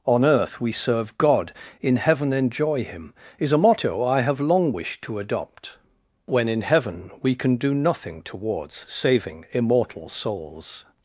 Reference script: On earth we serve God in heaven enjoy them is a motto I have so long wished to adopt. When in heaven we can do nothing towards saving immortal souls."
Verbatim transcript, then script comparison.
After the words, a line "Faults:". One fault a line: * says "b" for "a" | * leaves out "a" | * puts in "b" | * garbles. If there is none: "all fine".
On earth we serve God in heaven enjoy him is a motto I have long wished to adopt. When in heaven we can do nothing towards saving immortal souls."
Faults:
* says "him" for "them"
* leaves out "so"